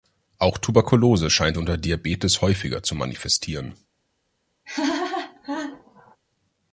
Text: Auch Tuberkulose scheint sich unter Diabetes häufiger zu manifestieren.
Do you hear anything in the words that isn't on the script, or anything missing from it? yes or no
yes